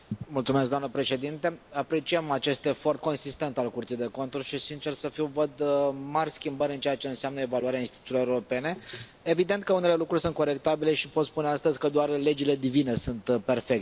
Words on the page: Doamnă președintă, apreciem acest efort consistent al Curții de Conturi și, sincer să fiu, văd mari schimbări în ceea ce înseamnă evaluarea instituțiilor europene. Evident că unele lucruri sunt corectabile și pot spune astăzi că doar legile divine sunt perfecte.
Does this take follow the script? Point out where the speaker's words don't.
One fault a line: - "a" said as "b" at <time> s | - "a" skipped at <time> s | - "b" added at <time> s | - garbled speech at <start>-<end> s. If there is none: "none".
none